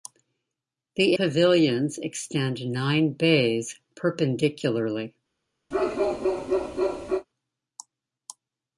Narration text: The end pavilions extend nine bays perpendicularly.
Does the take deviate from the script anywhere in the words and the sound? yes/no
yes